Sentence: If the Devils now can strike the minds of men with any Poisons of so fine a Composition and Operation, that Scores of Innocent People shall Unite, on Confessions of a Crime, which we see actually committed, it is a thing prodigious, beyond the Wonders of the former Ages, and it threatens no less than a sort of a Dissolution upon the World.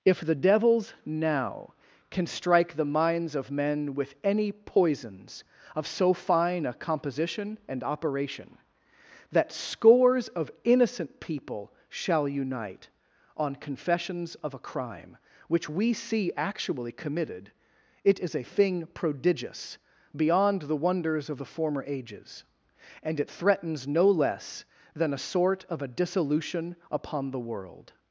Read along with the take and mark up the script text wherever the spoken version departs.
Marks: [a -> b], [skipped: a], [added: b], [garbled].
If the Devils now can strike the minds of men with any Poisons of so fine a Composition and Operation, that Scores of Innocent People shall Unite, on Confessions of a Crime, which we see actually committed, it is a thing prodigious, beyond the Wonders of the former Ages, and it threatens no less than a sort of a Dissolution upon the World.